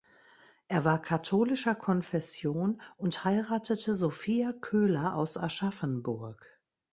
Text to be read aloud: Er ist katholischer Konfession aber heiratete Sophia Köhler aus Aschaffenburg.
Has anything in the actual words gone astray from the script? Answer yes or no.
yes